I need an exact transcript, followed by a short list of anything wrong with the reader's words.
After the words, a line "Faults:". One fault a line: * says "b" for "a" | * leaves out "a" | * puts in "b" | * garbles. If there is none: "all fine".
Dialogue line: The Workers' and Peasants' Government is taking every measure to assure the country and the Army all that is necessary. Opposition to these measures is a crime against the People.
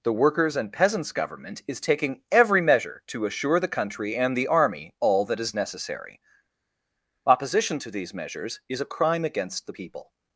The Workers' and Peasants' Government is taking every measure to assure the country and the Army all that is necessary. Opposition to these measures is a crime against the People.
Faults:
all fine